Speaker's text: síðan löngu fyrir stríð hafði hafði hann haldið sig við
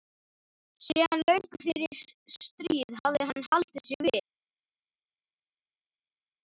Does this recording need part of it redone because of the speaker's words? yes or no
yes